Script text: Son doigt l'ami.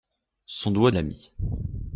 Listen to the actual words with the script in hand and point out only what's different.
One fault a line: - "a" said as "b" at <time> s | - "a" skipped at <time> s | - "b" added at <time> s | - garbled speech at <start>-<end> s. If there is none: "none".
none